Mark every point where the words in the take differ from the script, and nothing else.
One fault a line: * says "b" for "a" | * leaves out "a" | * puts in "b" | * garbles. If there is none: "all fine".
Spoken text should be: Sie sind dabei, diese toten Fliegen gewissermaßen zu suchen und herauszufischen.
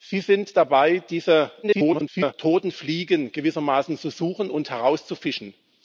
* garbles